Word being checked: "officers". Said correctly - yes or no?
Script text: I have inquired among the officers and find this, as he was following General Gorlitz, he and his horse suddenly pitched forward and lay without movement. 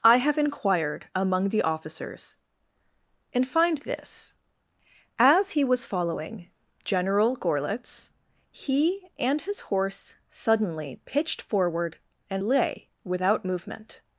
yes